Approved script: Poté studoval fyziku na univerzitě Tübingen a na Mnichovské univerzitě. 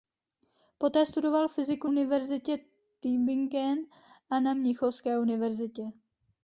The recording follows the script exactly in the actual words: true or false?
false